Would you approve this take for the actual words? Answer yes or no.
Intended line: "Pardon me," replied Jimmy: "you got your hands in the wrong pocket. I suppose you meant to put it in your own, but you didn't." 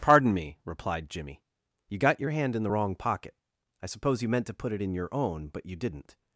no